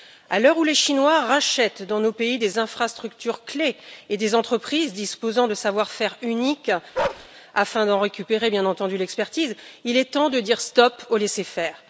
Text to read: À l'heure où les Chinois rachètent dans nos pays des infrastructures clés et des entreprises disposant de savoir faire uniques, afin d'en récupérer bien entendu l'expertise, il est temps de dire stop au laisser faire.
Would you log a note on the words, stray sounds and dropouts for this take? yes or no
yes